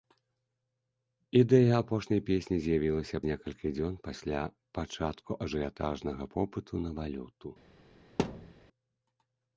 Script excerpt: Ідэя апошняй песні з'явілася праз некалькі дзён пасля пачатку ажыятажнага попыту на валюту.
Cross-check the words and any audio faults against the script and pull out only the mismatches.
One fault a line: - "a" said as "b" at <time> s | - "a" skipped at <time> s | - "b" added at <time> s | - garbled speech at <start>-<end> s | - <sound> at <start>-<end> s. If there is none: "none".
- "праз" skipped at 3.2 s
- thud at 8.2-8.5 s